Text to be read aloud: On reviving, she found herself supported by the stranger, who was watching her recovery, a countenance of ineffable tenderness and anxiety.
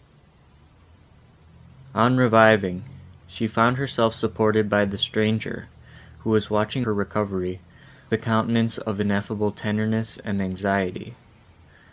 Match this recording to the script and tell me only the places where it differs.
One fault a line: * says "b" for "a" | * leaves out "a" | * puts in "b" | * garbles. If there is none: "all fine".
all fine